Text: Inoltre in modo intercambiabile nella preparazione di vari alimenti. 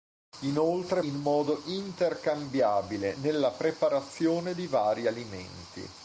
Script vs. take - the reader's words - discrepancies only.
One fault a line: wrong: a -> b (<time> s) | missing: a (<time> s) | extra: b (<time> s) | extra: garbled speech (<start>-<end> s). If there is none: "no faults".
no faults